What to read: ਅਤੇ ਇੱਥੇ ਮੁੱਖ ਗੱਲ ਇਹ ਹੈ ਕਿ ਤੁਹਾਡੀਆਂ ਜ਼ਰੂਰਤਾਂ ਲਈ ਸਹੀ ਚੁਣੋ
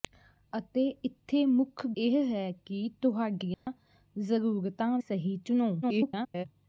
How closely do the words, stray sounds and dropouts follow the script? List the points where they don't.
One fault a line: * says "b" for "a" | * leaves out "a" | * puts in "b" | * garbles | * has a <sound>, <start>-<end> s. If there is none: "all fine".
* leaves out "ਗੱਲ"
* has a dropout, 3.5-3.7 s
* leaves out "ਲਈ"
* garbles